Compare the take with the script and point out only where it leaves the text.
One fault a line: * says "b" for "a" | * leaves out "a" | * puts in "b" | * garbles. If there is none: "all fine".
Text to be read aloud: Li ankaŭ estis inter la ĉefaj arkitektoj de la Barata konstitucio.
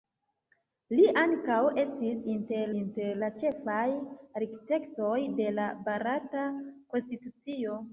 * puts in "inter"